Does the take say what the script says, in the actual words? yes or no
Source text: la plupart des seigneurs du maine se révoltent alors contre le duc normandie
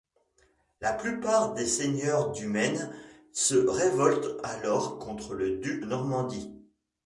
yes